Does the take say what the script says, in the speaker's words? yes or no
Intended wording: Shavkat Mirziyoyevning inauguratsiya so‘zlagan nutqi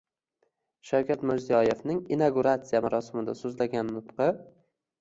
no